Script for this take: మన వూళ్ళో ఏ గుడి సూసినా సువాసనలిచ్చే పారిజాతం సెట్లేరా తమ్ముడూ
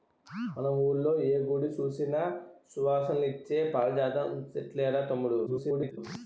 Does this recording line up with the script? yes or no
no